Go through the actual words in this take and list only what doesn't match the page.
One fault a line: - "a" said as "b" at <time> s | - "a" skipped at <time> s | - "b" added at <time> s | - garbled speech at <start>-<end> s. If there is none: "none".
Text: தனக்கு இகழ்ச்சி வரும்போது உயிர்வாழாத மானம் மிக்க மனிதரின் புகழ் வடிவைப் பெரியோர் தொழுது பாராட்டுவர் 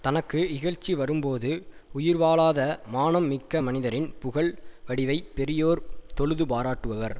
none